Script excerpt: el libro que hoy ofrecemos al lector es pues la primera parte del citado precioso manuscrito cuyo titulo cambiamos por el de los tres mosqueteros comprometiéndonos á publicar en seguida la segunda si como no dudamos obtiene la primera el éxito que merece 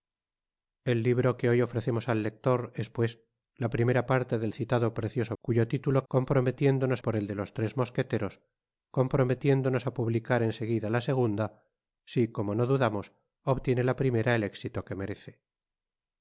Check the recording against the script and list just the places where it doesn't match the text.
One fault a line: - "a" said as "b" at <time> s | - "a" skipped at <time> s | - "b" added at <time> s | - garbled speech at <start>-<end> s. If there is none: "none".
- "manuscrito" skipped at 5.3 s
- "cambiamos" said as "comprometiéndonos" at 6.1 s